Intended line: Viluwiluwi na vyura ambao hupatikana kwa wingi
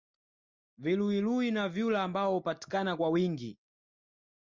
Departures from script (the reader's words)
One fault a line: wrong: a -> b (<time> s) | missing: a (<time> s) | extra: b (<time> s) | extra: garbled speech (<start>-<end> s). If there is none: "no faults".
no faults